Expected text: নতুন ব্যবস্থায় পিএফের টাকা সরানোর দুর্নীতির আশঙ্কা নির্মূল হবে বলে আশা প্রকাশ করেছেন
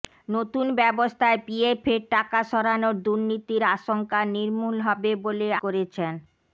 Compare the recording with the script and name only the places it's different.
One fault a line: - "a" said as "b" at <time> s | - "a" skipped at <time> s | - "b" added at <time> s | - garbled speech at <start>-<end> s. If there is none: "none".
- "আশা প্রকাশ" skipped at 5.5 s